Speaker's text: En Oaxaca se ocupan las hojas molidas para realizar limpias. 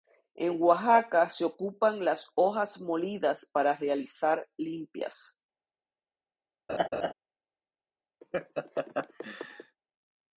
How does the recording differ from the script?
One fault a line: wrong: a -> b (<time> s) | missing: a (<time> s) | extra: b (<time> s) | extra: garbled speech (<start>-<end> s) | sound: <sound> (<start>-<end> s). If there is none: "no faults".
sound: laugh (6.7-7.1 s)
sound: laugh (8.2-9.8 s)